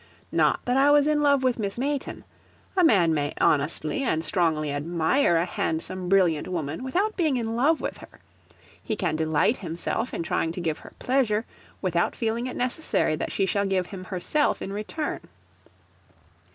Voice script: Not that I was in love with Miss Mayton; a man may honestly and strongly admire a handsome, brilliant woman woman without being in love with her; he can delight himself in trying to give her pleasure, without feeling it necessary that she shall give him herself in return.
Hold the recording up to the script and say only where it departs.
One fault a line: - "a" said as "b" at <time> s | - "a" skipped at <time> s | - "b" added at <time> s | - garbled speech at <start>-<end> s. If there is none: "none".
- "woman" skipped at 6.8 s